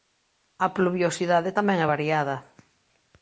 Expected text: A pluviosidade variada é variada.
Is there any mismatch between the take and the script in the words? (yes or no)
yes